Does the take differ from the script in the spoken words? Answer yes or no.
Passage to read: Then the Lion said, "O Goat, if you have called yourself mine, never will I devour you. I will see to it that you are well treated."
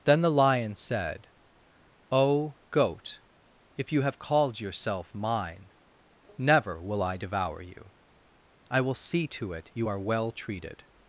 yes